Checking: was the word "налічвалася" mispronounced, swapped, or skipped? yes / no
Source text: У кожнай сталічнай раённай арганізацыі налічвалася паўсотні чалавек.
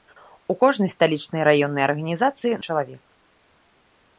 yes